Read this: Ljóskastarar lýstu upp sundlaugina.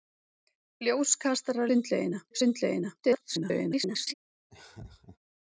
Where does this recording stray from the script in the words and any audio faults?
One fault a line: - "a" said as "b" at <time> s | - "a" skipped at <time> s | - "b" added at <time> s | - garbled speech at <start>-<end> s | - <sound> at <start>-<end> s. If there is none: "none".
- "lýstu" said as "sundlaugina" at 1.7 s
- garbled speech at 3.0-4.1 s
- laugh at 4.5-5.2 s